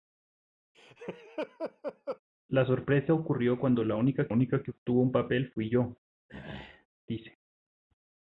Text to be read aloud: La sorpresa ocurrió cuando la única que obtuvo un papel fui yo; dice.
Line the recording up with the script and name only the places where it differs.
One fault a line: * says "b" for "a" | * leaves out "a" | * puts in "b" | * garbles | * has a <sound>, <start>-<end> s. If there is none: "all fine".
* has a laugh, 0.7-2.2 s
* puts in "única"
* has a throat clearing, 6.3-6.9 s